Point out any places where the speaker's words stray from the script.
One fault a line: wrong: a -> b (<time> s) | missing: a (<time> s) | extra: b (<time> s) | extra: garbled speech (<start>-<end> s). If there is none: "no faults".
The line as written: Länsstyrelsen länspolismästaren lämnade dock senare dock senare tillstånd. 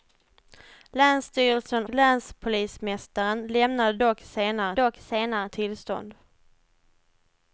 no faults